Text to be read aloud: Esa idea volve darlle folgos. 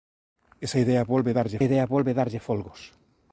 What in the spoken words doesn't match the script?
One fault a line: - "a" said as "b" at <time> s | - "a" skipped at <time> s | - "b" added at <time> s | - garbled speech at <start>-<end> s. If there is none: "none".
- "idea volve darlle" added at 1.6 s